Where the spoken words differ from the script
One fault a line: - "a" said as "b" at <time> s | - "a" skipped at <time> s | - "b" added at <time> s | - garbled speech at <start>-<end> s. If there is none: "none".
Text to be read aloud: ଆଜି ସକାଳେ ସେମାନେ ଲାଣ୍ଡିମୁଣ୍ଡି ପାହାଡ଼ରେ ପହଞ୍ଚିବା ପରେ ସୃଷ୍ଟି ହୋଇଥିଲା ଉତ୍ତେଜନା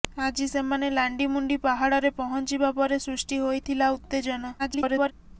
- "ସକାଳେ" skipped at 0.5 s
- garbled speech at 4.6-5.1 s